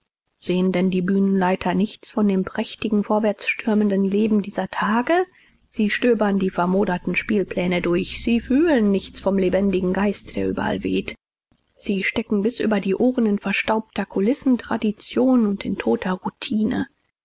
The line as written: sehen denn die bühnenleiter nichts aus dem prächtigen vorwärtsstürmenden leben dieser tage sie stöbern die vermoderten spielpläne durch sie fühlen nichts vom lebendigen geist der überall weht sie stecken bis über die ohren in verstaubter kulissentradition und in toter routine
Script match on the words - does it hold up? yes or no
no